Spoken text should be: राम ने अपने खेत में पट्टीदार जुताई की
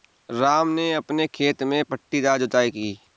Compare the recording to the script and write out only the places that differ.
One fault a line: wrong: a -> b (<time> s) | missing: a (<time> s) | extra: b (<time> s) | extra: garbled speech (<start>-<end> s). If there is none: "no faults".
no faults